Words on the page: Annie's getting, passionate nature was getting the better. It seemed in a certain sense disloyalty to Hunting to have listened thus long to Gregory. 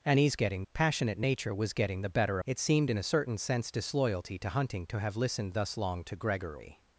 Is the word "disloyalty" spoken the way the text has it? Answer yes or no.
yes